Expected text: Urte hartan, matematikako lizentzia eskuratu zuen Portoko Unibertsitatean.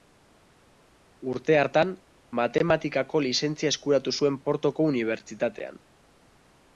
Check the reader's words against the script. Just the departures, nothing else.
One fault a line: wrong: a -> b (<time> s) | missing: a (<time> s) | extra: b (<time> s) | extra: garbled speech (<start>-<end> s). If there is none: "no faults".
no faults